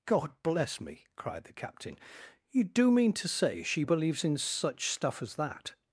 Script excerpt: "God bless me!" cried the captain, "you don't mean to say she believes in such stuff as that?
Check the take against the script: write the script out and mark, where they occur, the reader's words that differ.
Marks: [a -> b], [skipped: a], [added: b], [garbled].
"God bless me!" cried the captain, "you [don't -> do] mean to say she believes in such stuff as that?